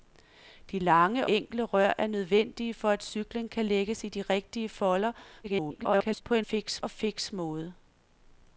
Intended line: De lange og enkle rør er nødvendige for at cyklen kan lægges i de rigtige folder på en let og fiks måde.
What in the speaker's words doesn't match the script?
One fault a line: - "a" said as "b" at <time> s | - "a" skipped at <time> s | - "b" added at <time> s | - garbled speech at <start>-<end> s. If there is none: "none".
- "og" skipped at 1.3 s
- garbled speech at 5.4-6.2 s
- "let" said as "fiks" at 6.4 s